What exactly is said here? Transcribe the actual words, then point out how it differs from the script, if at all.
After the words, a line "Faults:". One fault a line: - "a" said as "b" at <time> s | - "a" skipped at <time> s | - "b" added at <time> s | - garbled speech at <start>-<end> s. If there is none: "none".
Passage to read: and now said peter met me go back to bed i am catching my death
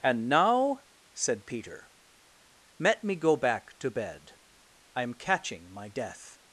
and now said peter let me go back to bed i am catching my death
Faults:
- "met" said as "let" at 2.8 s